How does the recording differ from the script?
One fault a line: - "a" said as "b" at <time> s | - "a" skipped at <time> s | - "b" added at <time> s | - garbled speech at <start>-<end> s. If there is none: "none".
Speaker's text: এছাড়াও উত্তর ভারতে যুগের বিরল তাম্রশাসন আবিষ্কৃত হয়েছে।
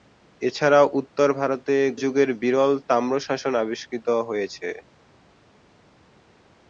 none